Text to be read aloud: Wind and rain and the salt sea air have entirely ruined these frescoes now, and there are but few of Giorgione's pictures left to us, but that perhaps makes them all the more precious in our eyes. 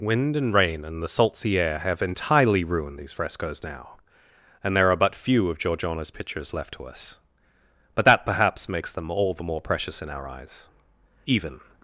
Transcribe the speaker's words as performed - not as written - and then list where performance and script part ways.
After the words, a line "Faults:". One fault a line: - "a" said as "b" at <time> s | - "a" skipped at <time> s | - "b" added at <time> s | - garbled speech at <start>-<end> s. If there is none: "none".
Wind and rain and the salt sea air have entirely ruined these frescoes now, and there are but few of Giorgione's pictures left to us, but that perhaps makes them all the more precious in our eyes. Even
Faults:
- "Even" added at 11.3 s